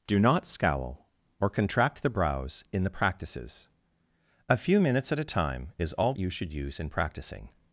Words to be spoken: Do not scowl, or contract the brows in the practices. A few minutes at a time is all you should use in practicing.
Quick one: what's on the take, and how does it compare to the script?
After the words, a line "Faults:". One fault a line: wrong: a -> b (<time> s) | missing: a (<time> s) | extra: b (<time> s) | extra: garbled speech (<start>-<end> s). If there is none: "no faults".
Do not scowl, or contract the brows in the practices. A few minutes at a time is all you should use in practicing.
Faults:
no faults